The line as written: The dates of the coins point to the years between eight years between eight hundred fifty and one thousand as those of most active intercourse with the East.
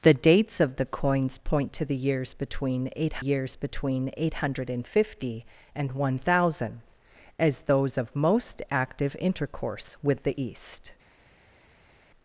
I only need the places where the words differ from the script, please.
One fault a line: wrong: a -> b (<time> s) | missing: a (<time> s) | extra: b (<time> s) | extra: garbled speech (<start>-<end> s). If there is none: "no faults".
no faults